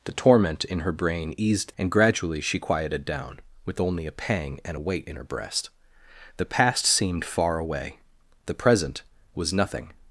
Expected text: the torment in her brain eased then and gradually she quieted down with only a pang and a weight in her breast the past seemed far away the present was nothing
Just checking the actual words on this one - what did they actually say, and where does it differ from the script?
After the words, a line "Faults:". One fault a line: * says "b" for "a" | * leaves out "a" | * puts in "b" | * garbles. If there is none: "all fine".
the torment in her brain eased and gradually she quieted down with only a pang and a weight in her breast the past seemed far away the present was nothing
Faults:
* leaves out "then"